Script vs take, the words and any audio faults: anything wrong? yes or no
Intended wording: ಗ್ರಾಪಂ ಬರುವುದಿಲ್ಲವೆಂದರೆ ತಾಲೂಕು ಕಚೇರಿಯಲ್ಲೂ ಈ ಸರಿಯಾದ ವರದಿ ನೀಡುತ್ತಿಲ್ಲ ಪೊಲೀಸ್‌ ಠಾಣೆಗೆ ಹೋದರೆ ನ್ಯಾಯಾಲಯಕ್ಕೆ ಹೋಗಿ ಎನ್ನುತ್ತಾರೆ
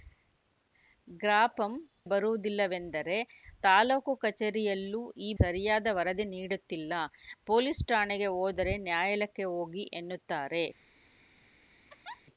yes